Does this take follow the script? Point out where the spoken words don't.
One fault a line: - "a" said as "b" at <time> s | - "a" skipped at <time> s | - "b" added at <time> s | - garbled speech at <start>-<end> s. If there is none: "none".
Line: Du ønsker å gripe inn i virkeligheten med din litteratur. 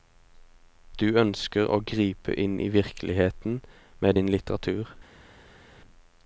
none